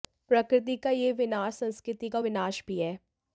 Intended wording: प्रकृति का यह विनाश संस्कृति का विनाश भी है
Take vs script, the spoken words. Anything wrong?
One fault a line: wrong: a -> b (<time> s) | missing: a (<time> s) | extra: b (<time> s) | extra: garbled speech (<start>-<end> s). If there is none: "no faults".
no faults